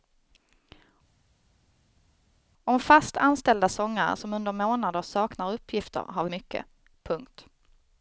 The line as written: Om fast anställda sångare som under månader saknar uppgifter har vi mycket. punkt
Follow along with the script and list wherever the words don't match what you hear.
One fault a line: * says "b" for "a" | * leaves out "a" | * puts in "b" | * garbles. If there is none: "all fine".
all fine